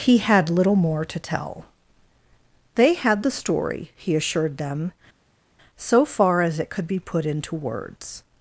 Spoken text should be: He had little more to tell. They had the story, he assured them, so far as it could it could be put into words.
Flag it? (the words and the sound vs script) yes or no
yes